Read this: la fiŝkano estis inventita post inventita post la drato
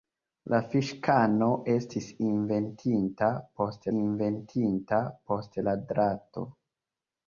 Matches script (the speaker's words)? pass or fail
pass